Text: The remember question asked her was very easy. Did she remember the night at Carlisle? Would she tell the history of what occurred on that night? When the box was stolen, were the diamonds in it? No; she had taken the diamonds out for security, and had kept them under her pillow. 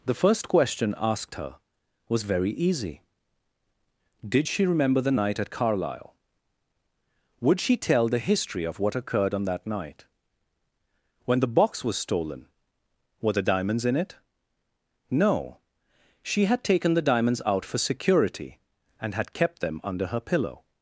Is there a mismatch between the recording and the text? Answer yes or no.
yes